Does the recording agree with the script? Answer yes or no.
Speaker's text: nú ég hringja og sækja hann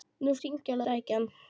yes